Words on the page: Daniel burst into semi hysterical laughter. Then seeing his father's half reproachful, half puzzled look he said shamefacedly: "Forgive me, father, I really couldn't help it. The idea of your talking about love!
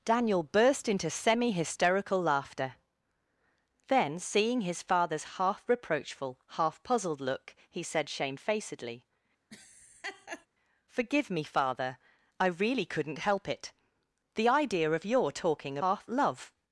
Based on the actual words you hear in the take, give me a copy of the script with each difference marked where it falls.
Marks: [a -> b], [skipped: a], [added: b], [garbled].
Daniel burst into semi hysterical laughter. Then seeing his father's half reproachful, half puzzled look he said shamefacedly: "Forgive me, father, I really couldn't help it. The idea of your talking [about -> half] love!